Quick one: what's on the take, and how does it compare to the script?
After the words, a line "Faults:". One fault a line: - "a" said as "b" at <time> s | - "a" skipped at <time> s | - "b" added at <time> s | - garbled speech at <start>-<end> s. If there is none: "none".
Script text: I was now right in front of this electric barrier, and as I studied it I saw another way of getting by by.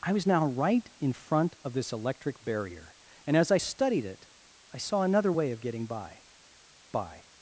I was now right in front of this electric barrier, and as I studied it I saw another way of getting by by.
Faults:
none